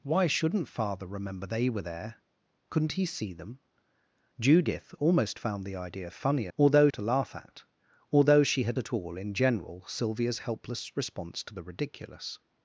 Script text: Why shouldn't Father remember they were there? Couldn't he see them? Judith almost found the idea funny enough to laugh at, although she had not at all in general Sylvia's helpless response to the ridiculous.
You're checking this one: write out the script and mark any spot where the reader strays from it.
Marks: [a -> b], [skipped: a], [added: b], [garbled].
Why shouldn't Father remember they were there? Couldn't he see them? Judith almost found the idea funny [enough -> although] to laugh at, although she had [skipped: not] at all in general Sylvia's helpless response to the ridiculous.